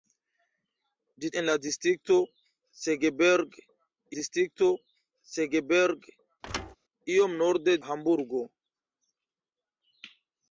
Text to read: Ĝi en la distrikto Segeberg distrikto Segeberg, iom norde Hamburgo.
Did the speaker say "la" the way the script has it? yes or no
yes